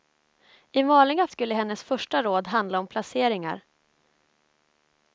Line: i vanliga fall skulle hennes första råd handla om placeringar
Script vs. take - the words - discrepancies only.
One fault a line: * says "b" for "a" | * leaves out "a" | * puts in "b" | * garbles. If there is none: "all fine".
* leaves out "fall"